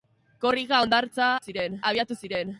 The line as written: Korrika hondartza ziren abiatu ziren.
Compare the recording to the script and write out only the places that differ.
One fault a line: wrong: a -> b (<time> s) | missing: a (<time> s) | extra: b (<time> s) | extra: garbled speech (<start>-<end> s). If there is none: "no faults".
no faults